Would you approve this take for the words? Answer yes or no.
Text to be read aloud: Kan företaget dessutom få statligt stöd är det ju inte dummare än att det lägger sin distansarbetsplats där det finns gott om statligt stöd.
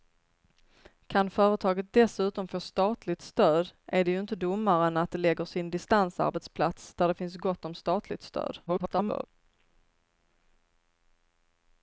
no